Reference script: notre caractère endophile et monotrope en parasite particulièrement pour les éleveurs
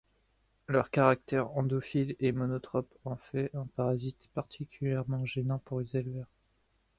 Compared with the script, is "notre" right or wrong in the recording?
wrong